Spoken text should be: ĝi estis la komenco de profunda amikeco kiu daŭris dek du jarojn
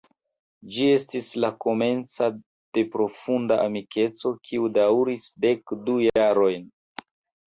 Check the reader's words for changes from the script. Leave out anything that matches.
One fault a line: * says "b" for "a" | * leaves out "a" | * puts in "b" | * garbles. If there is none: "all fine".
all fine